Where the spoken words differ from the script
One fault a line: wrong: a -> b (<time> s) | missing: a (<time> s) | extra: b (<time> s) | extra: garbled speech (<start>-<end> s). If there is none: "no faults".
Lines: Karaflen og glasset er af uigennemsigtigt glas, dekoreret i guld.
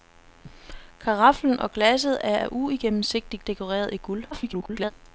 missing: glas (3.4 s)
extra: garbled speech (4.3-4.9 s)